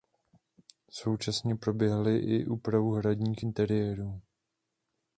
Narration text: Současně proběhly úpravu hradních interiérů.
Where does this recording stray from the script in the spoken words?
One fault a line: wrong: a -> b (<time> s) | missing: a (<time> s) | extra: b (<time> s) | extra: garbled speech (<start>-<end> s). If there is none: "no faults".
extra: i (2.2 s)